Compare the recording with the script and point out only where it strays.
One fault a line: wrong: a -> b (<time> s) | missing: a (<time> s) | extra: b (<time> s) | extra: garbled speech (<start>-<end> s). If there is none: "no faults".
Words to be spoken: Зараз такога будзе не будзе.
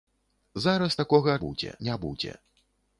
no faults